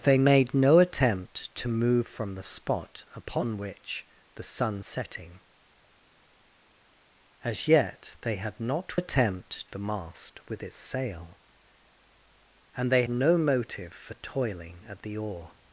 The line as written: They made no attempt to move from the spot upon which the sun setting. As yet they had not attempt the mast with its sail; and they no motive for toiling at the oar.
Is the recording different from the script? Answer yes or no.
no